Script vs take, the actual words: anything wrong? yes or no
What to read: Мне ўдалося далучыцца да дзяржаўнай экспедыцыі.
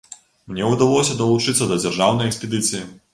no